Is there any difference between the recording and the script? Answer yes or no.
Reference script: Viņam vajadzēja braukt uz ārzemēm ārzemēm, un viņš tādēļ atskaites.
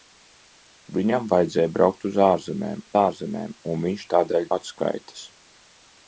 no